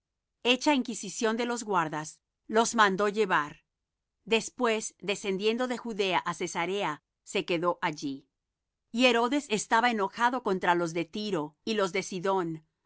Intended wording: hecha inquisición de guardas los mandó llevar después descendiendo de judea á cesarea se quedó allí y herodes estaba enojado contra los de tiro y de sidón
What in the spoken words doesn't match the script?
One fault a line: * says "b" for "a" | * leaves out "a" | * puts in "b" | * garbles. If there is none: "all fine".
* puts in "los"
* puts in "los"